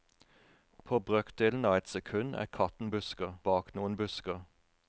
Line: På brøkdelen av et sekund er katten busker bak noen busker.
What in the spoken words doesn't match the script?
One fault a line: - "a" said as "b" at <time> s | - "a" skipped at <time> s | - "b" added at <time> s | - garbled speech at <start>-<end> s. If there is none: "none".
none